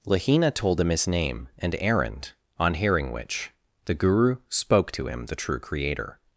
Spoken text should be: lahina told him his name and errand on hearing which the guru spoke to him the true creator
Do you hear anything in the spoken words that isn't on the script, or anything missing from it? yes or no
no